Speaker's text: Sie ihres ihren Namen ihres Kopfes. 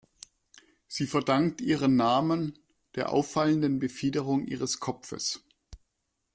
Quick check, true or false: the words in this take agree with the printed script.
false